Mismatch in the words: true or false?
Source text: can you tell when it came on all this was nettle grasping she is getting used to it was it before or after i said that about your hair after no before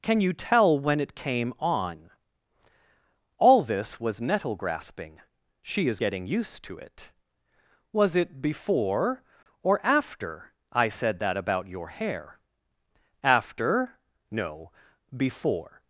false